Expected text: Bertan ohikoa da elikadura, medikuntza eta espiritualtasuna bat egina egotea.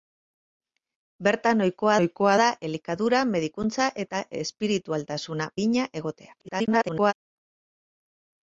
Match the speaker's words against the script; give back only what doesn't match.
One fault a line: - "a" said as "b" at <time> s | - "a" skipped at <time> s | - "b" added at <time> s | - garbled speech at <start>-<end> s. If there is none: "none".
- "ohikoa" added at 2.0 s
- "bat" skipped at 5.5 s
- garbled speech at 6.4-7.1 s